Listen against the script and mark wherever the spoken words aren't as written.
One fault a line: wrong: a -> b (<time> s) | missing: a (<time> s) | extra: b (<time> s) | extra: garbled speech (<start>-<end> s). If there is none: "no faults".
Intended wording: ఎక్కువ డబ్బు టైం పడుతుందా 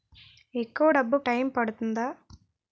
no faults